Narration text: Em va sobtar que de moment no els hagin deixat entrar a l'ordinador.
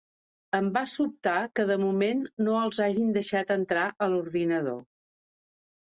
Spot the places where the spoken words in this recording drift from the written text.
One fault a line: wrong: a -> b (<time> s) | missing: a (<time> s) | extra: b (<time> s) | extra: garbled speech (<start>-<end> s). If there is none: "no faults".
no faults